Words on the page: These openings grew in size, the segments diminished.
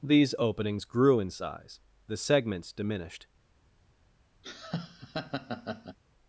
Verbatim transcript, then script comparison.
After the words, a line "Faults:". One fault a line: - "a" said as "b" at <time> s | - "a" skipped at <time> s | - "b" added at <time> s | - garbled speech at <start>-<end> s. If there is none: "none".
These openings grew in size, the segments diminished.
Faults:
none